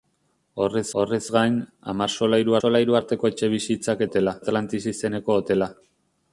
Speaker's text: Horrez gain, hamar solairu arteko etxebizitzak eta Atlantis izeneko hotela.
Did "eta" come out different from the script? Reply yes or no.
yes